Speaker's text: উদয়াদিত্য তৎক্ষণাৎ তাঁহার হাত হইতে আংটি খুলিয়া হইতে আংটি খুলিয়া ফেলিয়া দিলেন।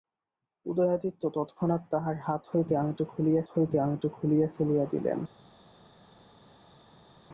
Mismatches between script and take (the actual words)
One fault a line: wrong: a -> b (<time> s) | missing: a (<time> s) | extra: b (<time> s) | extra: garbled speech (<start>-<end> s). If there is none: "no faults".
no faults